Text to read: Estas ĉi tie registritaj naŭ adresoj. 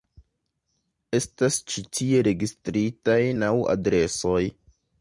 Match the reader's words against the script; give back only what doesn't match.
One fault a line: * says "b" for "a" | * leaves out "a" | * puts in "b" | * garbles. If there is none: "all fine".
all fine